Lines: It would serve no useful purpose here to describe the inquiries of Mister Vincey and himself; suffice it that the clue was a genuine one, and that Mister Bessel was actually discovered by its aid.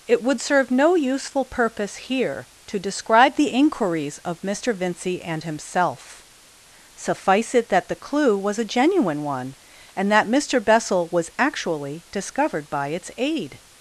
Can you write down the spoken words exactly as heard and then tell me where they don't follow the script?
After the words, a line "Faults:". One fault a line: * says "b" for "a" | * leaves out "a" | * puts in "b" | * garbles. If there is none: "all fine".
It would serve no useful purpose here to describe the inquiries of Mister Vincey and himself; suffice it that the clue was a genuine one, and that Mister Bessel was actually discovered by its aid.
Faults:
all fine